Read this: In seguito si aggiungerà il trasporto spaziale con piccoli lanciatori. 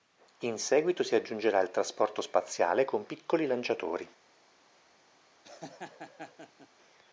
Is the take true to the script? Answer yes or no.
yes